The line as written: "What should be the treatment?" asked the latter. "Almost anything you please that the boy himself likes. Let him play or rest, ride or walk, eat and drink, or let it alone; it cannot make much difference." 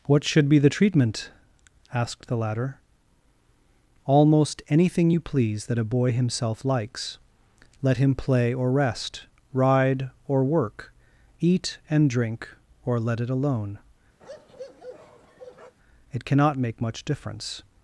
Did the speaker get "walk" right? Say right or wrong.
wrong